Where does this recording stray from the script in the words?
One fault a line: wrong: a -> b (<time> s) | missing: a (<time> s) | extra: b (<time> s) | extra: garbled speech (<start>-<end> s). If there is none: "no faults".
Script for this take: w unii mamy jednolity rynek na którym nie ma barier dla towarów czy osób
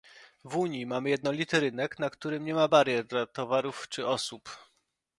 no faults